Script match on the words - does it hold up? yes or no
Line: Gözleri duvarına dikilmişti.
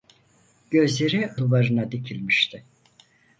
yes